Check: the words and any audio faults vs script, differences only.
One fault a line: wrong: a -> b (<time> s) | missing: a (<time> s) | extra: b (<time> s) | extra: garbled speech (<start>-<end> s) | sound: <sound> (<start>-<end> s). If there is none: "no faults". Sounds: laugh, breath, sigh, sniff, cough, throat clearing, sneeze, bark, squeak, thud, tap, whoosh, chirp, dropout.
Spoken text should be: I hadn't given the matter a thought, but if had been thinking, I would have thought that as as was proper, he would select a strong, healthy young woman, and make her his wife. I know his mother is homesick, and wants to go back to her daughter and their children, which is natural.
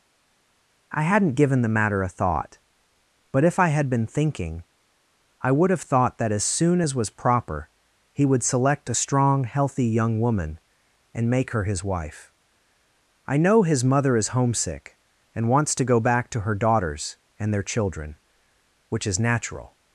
extra: I (3.6 s)
extra: soon (6.4 s)
wrong: daughter -> daughters (16.5 s)